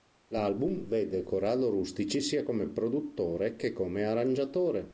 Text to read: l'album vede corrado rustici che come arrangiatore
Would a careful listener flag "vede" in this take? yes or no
no